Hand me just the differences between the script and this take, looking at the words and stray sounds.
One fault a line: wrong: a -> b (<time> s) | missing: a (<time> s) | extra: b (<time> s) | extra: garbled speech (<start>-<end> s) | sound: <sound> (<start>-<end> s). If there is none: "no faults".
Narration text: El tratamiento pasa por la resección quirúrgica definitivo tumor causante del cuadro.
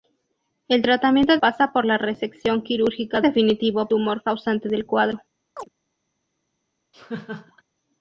sound: chirp (5.6-5.7 s)
sound: laugh (6.9-7.6 s)